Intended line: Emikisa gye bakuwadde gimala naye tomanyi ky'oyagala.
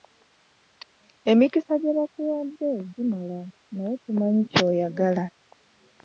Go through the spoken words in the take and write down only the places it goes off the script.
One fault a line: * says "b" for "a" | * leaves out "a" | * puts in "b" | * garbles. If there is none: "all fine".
all fine